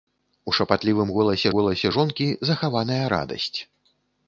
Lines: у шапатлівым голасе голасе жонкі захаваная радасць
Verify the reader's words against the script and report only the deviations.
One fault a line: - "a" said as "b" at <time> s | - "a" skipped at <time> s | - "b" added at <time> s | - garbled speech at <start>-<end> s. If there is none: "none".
none